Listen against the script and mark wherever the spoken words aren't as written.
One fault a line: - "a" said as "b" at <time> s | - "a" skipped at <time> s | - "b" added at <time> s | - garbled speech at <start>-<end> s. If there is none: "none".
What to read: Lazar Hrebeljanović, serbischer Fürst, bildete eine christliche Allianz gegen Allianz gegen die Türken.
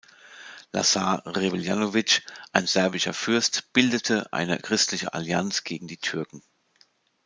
- "ein" added at 2.5 s
- "Allianz gegen" skipped at 5.9 s